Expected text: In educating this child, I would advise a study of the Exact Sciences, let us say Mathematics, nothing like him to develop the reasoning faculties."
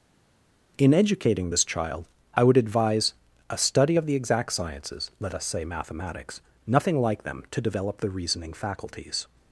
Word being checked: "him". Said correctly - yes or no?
no